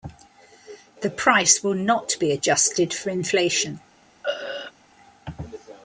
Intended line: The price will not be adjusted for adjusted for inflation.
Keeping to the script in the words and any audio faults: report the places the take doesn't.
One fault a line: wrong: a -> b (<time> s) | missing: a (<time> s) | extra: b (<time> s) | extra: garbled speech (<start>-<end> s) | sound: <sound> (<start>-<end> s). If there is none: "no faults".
missing: adjusted for (3.1 s)
sound: throat clearing (4.2-4.7 s)